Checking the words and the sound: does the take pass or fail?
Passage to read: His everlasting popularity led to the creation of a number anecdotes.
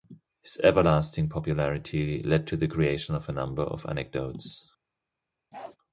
fail